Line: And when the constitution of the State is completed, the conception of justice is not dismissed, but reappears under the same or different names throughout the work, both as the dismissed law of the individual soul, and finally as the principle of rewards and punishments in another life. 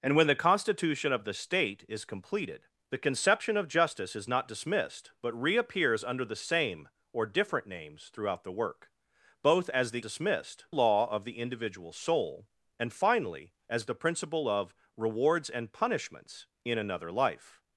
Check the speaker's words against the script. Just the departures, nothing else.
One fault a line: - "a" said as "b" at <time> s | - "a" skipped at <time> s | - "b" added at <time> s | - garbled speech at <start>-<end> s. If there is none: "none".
none